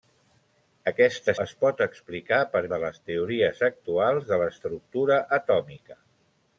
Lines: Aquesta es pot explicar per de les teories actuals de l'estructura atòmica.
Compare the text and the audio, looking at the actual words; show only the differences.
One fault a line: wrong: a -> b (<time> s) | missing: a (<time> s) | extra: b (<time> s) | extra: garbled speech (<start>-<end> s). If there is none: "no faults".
no faults